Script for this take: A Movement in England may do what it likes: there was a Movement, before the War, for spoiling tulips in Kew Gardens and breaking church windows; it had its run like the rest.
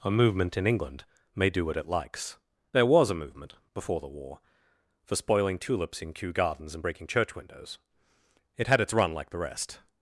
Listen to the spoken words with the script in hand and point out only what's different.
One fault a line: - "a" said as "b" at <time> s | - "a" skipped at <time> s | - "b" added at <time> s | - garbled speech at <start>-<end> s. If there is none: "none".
none